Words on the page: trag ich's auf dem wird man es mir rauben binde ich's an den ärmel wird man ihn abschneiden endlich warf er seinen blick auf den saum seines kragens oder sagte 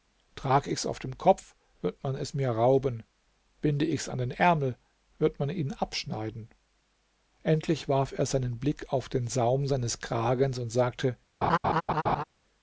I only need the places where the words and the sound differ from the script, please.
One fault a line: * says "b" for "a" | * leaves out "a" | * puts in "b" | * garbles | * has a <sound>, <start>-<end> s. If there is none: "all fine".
* puts in "kopf"
* says "und" for "oder"
* has a laugh, 11.4-12.2 s